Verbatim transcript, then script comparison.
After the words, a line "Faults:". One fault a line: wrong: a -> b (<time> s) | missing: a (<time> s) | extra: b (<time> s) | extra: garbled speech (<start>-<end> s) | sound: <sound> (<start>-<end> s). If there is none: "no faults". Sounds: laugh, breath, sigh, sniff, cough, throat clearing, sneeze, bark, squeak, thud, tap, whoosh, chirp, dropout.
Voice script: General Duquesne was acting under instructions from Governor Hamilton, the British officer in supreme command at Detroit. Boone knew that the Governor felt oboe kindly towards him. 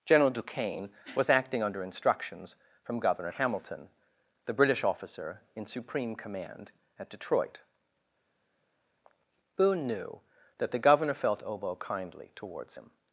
General Duquesne was acting under instructions from Governor Hamilton, the British officer in supreme command at Detroit. Boone knew that the Governor felt oboe kindly towards him.
Faults:
no faults